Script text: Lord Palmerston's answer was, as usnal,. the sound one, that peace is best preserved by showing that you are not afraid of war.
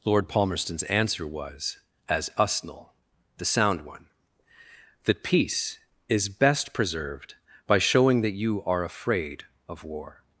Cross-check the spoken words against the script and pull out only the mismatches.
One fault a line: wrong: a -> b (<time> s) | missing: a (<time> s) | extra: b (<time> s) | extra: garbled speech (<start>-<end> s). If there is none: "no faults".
missing: not (8.8 s)